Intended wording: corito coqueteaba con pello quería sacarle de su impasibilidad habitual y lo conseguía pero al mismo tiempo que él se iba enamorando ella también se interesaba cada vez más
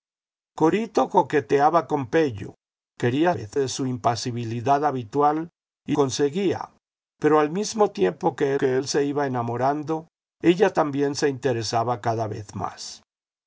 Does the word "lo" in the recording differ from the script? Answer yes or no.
yes